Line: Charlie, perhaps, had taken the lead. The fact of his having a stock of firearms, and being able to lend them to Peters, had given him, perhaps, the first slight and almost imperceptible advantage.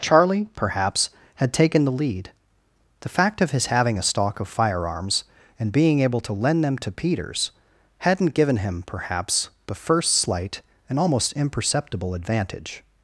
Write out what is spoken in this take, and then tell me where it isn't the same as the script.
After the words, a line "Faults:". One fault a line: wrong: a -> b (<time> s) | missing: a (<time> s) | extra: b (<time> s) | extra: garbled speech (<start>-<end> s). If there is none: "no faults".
Charlie, perhaps, had taken the lead. The fact of his having a stock of firearms, and being able to lend them to Peters, hadn't given him, perhaps, the first slight and almost imperceptible advantage.
Faults:
wrong: had -> hadn't (8.0 s)